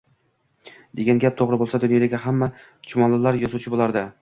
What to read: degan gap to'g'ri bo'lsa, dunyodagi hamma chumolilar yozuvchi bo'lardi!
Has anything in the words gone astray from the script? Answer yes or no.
no